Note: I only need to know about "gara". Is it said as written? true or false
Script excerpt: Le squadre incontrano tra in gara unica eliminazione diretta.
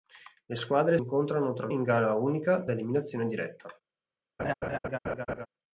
true